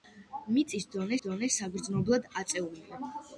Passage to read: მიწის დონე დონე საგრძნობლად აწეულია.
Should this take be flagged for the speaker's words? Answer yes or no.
no